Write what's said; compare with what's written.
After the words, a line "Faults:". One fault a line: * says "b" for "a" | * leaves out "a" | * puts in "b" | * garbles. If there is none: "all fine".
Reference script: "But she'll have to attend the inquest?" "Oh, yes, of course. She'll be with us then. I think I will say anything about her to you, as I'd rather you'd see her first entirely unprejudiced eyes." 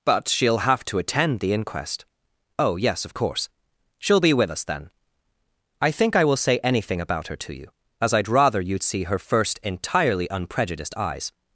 "But she'll have to attend the inquest?" "Oh, yes, of course. She'll be with us then. I think I will say anything about her to you, as I'd rather you'd see her first entirely unprejudiced eyes."
Faults:
all fine